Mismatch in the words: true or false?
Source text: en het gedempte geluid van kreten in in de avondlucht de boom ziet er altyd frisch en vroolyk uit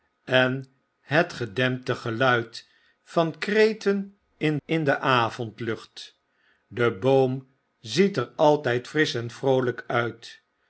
false